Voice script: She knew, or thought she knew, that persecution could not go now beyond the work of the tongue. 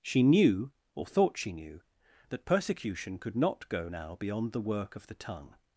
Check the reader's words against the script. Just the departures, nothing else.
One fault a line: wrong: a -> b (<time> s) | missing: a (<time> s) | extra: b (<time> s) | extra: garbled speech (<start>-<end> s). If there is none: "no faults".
no faults